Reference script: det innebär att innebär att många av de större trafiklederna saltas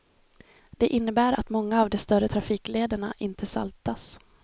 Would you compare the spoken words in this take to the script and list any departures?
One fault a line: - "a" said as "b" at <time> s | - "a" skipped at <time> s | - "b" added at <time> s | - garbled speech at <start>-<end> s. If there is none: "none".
- "innebär att" skipped at 1.5 s
- "inte" added at 3.2 s